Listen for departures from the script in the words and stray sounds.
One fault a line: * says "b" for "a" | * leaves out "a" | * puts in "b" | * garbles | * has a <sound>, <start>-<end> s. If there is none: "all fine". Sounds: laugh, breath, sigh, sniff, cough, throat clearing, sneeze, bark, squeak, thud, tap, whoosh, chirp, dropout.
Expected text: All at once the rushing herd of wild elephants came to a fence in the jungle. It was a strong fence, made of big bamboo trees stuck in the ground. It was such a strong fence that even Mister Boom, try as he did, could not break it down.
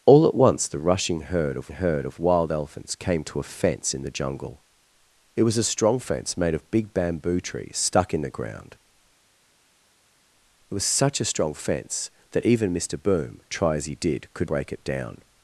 * puts in "herd of"
* leaves out "not"